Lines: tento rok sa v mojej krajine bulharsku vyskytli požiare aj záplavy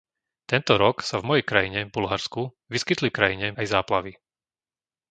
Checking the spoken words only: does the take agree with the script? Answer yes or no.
no